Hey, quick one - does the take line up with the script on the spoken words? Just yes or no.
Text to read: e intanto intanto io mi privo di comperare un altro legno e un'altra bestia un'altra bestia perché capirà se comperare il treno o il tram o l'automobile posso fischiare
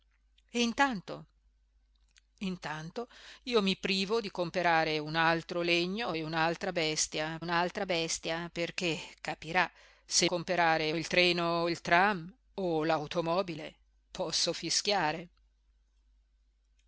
yes